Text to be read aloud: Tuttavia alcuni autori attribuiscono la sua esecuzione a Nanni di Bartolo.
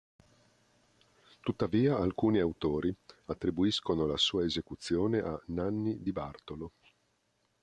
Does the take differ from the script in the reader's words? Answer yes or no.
no